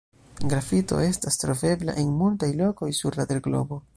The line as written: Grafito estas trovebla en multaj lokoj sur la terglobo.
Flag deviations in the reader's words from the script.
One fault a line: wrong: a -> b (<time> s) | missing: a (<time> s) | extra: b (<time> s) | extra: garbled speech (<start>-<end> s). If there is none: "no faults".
no faults